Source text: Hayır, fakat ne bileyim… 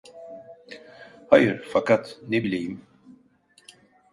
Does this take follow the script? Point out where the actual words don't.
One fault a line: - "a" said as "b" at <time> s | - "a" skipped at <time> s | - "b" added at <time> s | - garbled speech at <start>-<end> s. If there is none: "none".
none